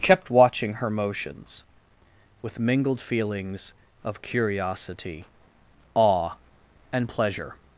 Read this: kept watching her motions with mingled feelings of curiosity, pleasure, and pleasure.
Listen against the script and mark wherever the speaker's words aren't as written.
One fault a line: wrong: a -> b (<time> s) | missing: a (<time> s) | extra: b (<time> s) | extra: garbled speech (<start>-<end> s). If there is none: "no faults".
wrong: pleasure -> awe (5.9 s)